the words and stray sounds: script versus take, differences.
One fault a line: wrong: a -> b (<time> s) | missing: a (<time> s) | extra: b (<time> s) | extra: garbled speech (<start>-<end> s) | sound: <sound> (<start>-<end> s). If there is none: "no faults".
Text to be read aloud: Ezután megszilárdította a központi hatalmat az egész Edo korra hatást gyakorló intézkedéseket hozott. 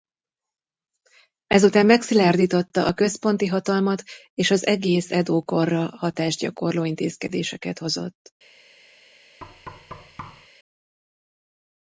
extra: és (4.3 s)
sound: thud (9.4-10.5 s)